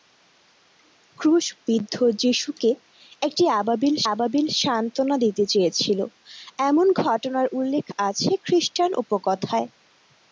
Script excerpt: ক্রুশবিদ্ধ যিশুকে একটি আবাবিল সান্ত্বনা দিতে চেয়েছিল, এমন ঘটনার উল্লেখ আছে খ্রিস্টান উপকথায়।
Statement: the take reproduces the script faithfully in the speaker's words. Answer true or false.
false